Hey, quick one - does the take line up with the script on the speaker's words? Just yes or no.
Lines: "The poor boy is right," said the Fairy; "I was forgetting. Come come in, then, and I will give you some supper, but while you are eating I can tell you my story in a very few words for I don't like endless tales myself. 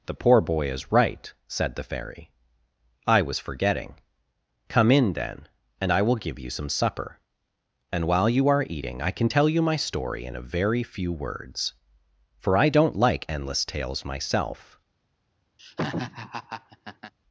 no